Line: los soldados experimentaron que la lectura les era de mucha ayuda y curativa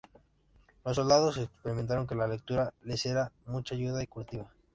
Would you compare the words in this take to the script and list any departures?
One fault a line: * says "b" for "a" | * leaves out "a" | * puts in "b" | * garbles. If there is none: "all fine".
all fine